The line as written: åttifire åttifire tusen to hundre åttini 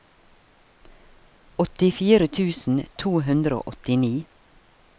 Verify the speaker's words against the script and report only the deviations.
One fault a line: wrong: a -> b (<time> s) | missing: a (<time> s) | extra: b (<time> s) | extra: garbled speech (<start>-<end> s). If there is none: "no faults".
missing: åttifire (2.3 s)
extra: og (3.6 s)